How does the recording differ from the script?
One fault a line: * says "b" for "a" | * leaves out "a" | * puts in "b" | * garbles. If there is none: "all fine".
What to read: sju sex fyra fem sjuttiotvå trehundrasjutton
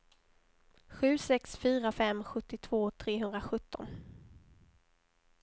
all fine